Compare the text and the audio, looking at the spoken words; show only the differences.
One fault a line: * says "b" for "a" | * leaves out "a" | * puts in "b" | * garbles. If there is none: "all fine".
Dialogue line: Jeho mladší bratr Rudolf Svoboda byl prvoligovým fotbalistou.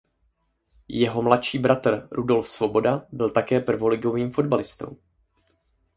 * puts in "také"